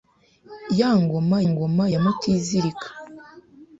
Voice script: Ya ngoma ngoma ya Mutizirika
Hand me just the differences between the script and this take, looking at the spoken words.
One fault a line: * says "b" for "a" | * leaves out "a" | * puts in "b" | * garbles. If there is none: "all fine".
all fine